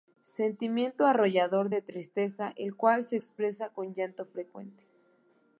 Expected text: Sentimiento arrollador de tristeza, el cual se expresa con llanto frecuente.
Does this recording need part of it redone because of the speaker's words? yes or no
no